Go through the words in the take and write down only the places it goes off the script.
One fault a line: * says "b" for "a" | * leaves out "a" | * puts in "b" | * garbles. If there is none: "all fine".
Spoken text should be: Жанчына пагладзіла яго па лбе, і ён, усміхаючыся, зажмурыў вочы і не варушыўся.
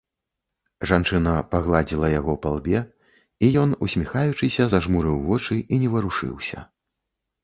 all fine